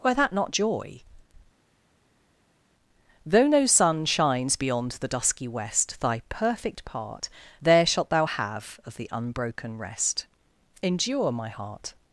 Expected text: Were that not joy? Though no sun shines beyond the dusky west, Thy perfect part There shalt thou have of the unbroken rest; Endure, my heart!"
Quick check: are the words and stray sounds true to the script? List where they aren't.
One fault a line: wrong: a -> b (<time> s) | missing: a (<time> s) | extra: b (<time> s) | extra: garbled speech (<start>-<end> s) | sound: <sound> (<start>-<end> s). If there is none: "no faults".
no faults